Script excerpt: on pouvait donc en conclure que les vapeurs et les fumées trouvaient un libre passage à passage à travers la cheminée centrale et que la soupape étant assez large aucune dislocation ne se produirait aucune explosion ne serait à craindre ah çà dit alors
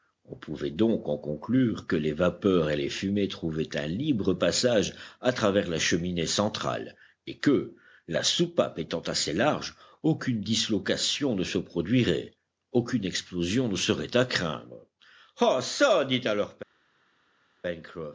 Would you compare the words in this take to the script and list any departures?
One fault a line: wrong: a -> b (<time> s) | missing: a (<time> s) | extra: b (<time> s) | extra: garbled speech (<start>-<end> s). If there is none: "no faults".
missing: passage à (5.3 s)